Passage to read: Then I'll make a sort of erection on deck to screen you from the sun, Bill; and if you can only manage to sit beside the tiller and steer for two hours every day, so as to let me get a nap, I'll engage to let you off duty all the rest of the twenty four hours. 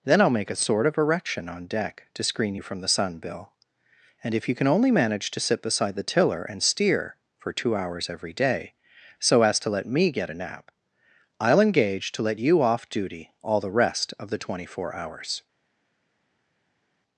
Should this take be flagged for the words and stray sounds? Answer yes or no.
no